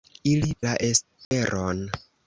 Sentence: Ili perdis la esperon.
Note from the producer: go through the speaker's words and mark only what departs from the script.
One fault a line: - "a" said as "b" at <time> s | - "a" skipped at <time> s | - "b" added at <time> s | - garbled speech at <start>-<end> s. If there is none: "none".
- "perdis" skipped at 0.5 s